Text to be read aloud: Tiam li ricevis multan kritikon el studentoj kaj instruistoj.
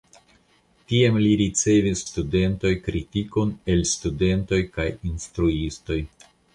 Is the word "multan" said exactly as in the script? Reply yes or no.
no